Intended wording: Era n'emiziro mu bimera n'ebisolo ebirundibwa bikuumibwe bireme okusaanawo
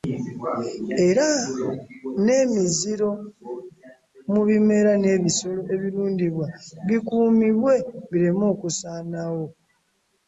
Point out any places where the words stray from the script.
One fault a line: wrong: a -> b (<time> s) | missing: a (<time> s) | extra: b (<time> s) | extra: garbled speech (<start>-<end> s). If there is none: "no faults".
no faults